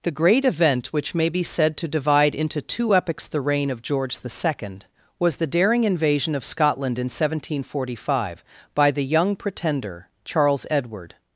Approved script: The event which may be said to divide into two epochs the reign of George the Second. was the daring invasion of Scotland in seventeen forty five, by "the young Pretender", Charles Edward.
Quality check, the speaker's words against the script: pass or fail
fail